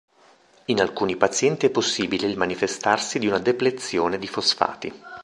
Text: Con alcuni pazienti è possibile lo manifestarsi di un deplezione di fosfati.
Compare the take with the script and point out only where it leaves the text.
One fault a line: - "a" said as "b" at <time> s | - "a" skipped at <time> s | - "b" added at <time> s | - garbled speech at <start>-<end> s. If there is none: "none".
- "Con" said as "In" at 0.7 s
- "lo" said as "il" at 2.2 s
- "un" said as "una" at 3.3 s